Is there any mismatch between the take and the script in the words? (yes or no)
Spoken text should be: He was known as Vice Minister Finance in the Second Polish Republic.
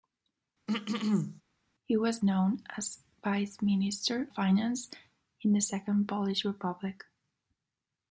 no